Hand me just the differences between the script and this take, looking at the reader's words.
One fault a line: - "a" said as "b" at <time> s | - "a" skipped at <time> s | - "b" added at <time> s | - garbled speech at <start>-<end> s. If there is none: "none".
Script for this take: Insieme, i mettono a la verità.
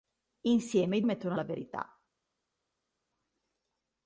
none